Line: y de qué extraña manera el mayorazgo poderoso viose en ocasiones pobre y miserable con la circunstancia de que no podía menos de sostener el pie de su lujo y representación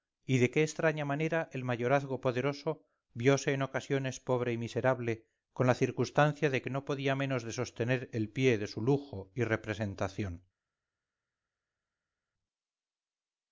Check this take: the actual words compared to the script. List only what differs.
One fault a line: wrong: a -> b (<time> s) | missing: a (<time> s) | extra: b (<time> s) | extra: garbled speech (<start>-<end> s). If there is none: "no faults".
no faults